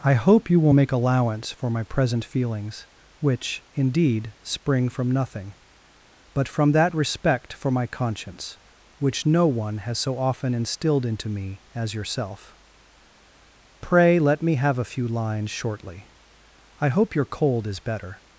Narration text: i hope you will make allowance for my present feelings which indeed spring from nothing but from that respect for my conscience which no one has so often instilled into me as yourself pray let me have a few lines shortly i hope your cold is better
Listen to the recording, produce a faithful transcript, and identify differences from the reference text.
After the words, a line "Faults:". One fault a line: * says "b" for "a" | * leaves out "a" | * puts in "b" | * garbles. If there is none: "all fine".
i hope you will make allowance for my present feelings which indeed spring from nothing but from that respect for my conscience which no one has so often instilled into me as yourself pray let me have a few lines shortly i hope your cold is better
Faults:
all fine